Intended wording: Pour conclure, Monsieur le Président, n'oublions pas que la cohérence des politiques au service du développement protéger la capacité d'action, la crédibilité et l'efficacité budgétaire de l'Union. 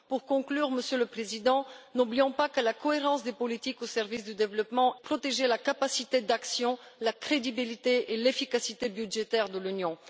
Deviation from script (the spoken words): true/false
false